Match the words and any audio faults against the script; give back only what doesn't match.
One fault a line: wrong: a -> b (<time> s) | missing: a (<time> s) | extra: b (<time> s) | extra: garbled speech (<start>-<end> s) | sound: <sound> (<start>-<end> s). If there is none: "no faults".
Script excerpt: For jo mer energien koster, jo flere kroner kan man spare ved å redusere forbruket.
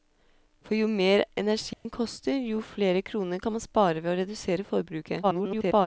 sound: dropout (1.7-1.9 s)
extra: garbled speech (5.2-5.9 s)